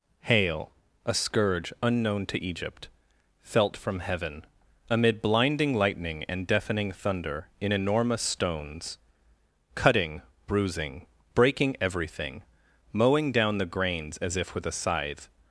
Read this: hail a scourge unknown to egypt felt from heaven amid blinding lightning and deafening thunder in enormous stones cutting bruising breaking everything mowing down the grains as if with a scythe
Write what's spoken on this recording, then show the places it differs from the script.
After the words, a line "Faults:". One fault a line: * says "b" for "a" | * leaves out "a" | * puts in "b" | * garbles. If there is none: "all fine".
hail a scourge unknown to egypt felt from heaven amid blinding lightning and deafening thunder in enormous stones cutting bruising breaking everything mowing down the grains as if with a scythe
Faults:
all fine